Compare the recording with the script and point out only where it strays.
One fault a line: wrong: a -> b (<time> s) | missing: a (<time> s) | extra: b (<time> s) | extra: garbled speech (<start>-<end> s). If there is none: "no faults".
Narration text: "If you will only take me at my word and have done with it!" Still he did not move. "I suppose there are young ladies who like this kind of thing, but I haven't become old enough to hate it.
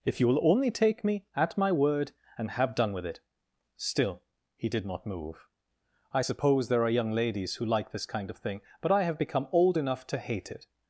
wrong: haven't -> have (9.0 s)